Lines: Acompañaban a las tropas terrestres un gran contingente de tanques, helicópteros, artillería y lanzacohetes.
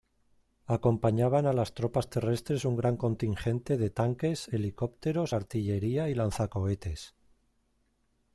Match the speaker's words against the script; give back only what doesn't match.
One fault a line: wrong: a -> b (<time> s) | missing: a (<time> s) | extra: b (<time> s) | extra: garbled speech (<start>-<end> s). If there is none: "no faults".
no faults